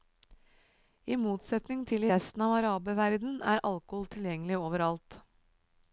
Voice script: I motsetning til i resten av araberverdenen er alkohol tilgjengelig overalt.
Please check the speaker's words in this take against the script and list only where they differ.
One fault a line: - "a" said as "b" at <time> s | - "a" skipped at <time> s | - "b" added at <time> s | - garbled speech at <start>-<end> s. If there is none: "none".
none